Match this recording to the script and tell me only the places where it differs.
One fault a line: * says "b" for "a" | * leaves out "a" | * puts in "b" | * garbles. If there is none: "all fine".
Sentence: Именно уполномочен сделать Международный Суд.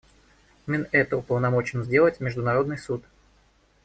* puts in "это"